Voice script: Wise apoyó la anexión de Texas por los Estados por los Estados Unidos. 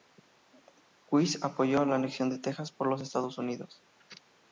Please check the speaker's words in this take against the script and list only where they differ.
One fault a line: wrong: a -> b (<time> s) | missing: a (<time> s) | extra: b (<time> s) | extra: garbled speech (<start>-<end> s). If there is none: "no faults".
missing: por los Estados (3.4 s)